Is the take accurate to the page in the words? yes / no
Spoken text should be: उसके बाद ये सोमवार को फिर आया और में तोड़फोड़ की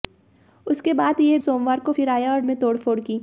yes